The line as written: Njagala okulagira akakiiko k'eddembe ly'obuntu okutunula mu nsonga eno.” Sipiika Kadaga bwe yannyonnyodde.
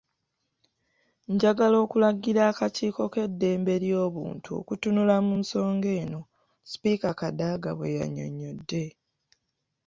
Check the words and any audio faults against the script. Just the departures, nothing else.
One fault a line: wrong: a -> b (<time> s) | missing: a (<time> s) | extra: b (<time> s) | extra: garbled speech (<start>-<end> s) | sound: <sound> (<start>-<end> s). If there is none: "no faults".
no faults